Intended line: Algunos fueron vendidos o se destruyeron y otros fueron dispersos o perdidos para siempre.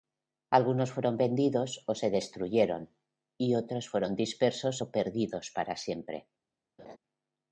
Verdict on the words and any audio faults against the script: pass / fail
fail